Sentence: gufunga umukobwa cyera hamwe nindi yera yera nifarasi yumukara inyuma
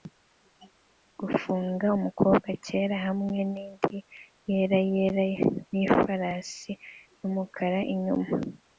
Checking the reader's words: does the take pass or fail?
pass